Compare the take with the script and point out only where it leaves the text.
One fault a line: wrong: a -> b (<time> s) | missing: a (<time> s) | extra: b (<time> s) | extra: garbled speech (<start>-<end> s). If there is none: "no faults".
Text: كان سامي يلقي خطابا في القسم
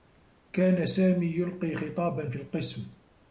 no faults